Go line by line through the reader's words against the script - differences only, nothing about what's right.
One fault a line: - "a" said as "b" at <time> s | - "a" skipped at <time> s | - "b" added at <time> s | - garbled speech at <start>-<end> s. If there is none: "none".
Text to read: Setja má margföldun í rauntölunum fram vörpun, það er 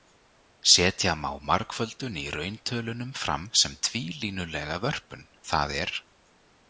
- "sem tvílínulega" added at 3.6 s